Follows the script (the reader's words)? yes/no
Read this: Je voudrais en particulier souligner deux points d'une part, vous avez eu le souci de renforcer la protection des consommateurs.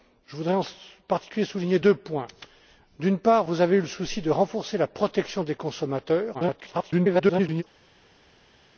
no